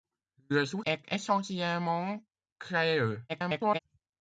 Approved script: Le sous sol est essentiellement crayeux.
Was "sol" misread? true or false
true